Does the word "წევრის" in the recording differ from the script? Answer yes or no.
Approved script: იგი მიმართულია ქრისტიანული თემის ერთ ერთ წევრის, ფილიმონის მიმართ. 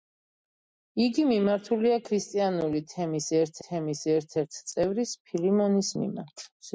no